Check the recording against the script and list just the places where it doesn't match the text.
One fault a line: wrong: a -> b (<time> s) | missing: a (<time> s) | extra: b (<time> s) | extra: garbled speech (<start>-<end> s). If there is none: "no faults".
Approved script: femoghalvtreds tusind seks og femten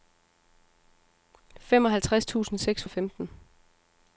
no faults